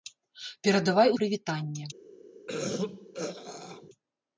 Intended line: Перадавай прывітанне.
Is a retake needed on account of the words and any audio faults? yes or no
yes